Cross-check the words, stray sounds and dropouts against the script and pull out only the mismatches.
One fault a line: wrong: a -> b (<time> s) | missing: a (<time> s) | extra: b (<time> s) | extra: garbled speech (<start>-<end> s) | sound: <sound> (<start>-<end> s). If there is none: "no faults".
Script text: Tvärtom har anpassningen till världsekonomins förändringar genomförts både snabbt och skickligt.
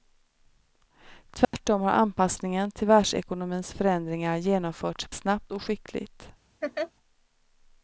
sound: dropout (1.4-1.5 s)
missing: både (5.1 s)
sound: laugh (6.6-6.9 s)